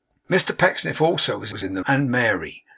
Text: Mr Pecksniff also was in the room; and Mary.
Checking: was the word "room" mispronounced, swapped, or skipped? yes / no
yes